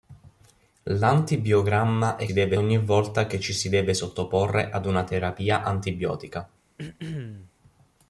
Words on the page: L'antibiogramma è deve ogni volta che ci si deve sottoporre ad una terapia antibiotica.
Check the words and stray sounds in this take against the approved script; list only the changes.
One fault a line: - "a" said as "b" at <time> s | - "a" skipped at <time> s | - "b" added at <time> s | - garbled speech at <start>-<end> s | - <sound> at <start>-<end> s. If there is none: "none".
- throat clearing at 6.8-7.5 s